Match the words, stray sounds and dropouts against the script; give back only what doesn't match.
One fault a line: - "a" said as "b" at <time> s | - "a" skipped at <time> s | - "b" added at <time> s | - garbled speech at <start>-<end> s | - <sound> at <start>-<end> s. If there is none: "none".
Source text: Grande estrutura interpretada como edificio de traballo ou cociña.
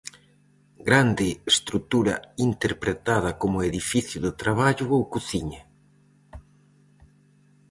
none